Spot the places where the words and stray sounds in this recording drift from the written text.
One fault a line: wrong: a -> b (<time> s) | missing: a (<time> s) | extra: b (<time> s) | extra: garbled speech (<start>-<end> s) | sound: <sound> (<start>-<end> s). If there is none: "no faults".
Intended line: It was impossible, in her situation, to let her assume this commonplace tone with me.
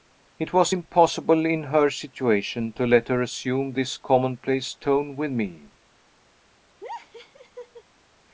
sound: laugh (6.8-7.8 s)